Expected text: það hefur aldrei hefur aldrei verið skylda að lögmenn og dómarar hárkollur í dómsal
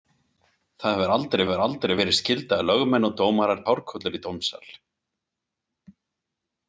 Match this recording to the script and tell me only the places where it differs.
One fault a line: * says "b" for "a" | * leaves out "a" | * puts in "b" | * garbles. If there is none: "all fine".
all fine